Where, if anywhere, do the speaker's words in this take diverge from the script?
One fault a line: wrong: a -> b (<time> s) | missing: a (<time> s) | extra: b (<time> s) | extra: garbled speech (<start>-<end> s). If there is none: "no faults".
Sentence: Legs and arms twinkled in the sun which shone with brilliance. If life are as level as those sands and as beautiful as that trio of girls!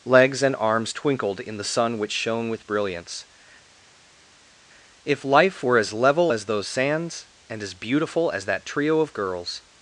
wrong: are -> were (5.6 s)